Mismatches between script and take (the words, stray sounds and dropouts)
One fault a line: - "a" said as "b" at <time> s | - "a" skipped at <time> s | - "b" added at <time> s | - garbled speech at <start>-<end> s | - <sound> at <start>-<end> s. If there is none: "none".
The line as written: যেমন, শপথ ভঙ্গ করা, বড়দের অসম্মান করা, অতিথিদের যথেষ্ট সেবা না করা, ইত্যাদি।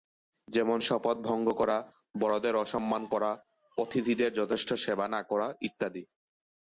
none